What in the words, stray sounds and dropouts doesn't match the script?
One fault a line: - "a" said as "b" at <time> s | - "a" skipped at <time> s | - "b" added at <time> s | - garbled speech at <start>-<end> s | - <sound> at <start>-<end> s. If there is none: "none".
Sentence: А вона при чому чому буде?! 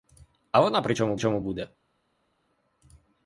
none